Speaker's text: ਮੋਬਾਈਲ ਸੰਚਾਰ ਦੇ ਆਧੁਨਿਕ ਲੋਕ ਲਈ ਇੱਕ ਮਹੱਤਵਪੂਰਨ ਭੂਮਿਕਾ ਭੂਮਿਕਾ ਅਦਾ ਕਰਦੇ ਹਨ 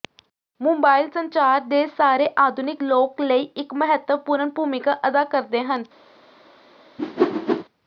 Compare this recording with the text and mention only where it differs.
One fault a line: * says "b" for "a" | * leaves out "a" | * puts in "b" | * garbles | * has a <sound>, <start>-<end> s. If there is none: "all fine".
* puts in "ਸਾਰੇ"
* leaves out "ਭੂਮਿਕਾ"
* has a whoosh, 7.0-7.6 s